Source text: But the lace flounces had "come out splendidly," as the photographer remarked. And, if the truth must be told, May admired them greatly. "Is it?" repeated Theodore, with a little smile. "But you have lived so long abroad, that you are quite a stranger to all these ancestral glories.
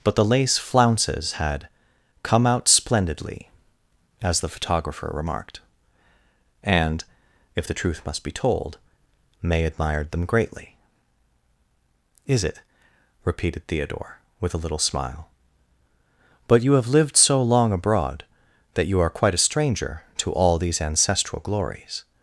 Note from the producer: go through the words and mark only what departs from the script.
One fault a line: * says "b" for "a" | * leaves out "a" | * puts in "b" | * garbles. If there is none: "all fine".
all fine